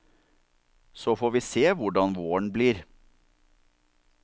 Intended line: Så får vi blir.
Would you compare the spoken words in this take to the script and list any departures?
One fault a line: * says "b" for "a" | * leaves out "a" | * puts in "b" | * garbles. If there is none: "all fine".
* puts in "se hvordan våren"